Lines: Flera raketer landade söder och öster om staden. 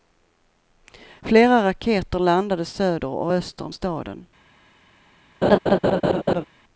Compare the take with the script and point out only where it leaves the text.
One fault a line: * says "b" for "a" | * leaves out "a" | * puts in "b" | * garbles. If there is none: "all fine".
all fine